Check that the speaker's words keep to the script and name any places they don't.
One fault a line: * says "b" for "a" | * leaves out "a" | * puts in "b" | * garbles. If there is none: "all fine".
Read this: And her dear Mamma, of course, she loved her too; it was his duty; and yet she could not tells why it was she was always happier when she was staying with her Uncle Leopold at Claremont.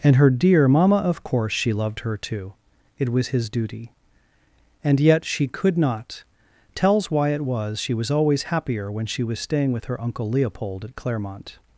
all fine